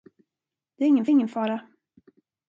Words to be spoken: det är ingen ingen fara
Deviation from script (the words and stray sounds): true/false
false